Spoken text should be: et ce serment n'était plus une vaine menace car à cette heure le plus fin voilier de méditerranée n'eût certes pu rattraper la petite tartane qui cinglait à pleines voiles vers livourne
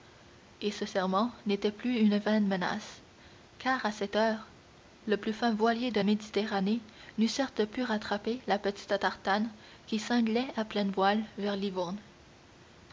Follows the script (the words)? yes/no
yes